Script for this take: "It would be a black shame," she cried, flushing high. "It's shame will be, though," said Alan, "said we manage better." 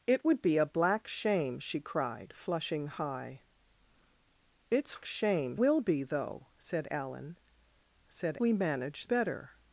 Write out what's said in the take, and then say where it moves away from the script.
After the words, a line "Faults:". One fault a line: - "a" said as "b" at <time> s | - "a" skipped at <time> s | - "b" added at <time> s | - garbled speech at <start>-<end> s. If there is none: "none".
"It would be a black shame," she cried, flushing high. "It's shame will be, though," said Alan, "said we manage better."
Faults:
none